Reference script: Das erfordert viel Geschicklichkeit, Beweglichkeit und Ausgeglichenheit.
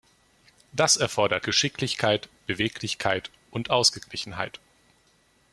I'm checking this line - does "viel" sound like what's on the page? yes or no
no